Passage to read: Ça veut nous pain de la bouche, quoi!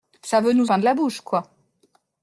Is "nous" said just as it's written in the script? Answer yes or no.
yes